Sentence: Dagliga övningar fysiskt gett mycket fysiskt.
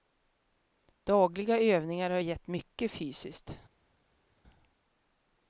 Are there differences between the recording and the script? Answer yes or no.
yes